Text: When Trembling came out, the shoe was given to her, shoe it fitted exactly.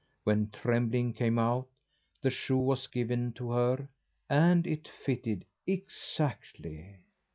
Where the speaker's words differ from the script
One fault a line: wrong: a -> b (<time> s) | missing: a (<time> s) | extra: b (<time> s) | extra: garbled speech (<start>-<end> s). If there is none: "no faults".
wrong: shoe -> and (4.3 s)